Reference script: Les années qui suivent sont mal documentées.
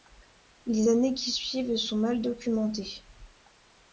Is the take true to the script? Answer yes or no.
yes